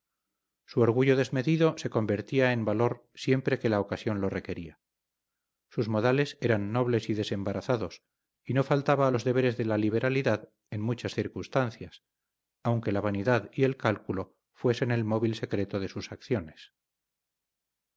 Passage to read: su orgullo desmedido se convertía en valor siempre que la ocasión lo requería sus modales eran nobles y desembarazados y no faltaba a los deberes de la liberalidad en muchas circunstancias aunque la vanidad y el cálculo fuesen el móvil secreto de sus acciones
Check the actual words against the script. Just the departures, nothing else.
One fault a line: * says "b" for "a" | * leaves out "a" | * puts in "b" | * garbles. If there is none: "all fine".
all fine